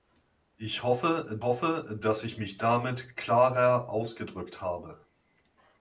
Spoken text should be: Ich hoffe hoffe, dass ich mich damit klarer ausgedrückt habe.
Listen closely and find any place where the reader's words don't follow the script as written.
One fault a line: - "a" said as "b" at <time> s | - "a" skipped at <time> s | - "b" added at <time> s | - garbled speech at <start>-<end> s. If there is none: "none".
none